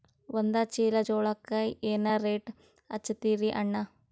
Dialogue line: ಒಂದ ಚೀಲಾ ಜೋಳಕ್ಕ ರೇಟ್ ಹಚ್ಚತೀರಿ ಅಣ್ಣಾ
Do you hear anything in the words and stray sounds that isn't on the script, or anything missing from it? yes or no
yes